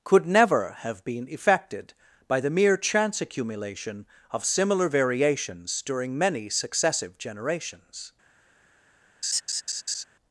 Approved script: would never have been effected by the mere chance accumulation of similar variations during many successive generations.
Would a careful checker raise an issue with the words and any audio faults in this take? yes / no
yes